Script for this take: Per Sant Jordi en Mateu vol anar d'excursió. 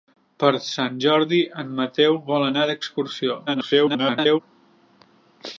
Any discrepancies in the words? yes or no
yes